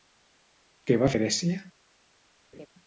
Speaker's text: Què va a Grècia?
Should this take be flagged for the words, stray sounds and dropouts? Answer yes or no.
yes